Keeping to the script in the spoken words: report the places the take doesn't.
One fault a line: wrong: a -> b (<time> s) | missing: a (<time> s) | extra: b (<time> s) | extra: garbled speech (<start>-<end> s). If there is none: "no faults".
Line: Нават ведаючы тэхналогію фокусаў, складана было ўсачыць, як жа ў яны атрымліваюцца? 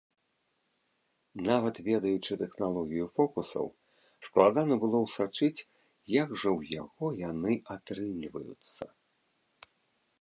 extra: яго (6.8 s)